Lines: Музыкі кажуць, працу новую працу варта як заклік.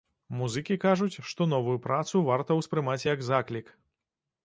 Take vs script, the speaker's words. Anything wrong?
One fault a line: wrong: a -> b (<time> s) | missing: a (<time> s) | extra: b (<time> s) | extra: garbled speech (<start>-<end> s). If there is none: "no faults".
wrong: працу -> што (1.3 s)
extra: ўспрымаць (2.6 s)